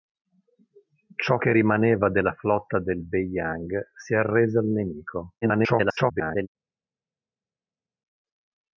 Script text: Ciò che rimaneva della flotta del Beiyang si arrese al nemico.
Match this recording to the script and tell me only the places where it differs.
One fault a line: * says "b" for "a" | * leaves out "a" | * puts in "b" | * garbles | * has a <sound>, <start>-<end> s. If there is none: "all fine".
* garbles